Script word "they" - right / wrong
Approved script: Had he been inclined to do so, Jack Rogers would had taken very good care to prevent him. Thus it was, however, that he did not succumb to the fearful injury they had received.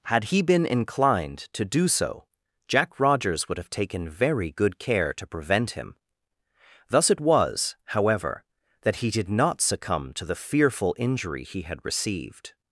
wrong